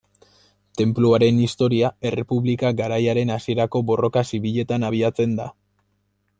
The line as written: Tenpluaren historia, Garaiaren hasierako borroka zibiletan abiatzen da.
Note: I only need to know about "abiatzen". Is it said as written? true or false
true